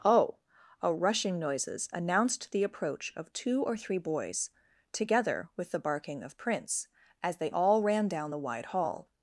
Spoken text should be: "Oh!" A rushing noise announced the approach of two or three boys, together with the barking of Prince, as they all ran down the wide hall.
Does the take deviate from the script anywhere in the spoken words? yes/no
yes